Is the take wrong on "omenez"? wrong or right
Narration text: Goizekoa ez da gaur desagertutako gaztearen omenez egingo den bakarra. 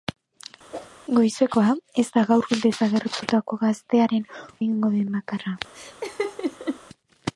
wrong